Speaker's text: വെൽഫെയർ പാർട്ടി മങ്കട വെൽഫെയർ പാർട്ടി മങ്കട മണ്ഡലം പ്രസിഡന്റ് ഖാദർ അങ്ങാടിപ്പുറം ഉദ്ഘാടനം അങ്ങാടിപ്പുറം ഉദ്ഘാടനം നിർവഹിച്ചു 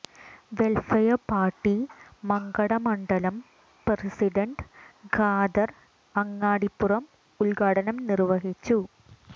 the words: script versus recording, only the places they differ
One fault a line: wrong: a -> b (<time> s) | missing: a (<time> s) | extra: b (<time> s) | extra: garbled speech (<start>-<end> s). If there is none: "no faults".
missing: വെൽഫെയർ പാർട്ടി മങ്കട (2.7 s)
missing: അങ്ങാടിപ്പുറം ഉദ്ഘാടനം (8.0 s)